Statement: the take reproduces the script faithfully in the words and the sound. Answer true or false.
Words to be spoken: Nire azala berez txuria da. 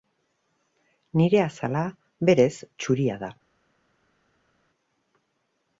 true